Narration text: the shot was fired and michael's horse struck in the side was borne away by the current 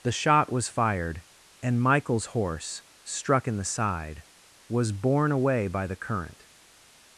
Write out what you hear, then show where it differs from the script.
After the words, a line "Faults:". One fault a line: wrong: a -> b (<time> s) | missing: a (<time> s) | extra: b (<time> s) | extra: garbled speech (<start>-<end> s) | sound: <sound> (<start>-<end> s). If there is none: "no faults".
the shot was fired and michael's horse struck in the side was borne away by the current
Faults:
no faults